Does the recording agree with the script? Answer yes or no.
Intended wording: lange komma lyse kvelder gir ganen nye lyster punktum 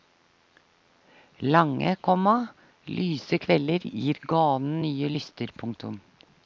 yes